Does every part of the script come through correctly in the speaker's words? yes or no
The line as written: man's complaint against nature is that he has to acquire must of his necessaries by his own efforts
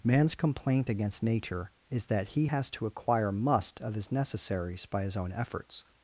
yes